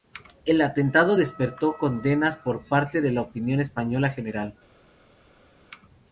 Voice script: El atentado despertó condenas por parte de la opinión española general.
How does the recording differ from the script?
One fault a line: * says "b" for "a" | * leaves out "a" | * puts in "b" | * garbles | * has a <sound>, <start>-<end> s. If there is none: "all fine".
all fine